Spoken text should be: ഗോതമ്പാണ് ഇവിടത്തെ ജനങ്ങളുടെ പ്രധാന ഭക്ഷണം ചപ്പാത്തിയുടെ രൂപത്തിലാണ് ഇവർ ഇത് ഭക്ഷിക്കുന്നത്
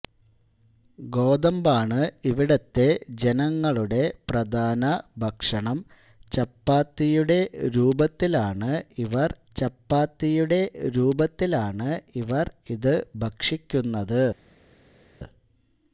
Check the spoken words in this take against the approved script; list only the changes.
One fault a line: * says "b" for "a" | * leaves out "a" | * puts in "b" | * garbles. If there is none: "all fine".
* puts in "ചപ്പാത്തിയുടെ രൂപത്തിലാണ് ഇവർ"